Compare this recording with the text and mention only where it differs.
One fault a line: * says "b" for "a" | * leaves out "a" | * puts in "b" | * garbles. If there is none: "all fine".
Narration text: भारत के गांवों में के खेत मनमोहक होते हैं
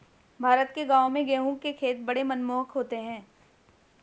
* puts in "गेहूं"
* puts in "बड़े"